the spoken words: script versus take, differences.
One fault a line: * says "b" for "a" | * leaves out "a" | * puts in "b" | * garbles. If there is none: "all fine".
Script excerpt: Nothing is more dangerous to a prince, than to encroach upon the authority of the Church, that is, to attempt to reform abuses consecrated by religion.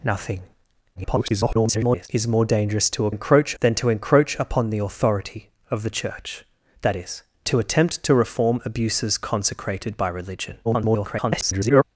* garbles
* says "encroach" for "prince"
* garbles